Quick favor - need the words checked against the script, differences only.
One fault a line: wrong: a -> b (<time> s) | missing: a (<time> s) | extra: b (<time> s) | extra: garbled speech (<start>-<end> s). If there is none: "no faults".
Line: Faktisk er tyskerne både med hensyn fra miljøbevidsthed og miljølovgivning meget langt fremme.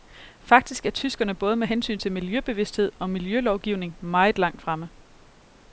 wrong: fra -> til (2.0 s)